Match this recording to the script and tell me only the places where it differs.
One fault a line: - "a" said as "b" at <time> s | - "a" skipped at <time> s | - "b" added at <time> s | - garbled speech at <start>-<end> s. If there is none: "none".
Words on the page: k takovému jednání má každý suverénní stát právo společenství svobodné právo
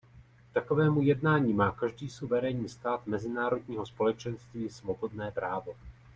- "právo" said as "mezinárodního" at 3.1 s